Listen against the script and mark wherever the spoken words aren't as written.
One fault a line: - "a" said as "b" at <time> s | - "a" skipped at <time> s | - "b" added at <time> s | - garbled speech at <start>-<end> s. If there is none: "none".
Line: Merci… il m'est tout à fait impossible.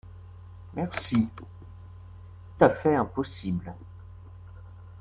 - "il m'est tout" skipped at 1.3 s